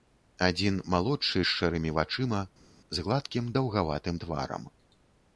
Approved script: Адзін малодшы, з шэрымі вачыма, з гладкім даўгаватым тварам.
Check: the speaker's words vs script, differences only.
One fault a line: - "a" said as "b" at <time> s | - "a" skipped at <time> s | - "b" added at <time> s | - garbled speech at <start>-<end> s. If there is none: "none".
none